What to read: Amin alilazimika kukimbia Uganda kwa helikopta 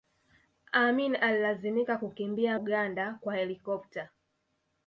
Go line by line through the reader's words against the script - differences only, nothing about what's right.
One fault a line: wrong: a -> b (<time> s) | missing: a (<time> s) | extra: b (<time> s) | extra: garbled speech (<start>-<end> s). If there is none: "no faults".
no faults